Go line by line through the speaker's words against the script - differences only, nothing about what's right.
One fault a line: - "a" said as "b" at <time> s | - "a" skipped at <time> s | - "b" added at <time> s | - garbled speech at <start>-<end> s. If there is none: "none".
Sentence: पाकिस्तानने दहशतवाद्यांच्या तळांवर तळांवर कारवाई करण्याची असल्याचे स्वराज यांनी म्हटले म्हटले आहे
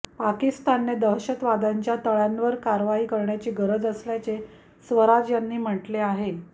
- "तळांवर" skipped at 2.5 s
- "गरज" added at 3.5 s
- "म्हटले" skipped at 6.0 s